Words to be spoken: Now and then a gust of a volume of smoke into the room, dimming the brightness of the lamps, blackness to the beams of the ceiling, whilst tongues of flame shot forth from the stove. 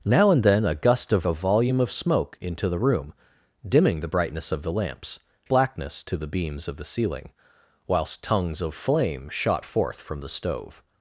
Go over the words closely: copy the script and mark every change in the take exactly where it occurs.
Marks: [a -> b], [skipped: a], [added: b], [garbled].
Now and then a gust of a volume of smoke into the room, dimming the brightness of the lamps, blackness to the beams of the ceiling, whilst tongues of flame shot forth from the stove.